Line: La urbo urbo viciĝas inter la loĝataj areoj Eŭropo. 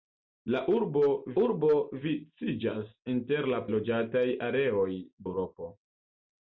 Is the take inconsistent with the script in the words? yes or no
no